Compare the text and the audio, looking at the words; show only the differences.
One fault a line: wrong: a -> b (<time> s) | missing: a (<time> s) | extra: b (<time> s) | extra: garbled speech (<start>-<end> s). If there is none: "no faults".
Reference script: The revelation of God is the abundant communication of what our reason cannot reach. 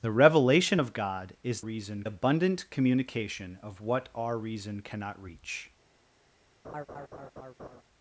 wrong: the -> reason (1.6 s)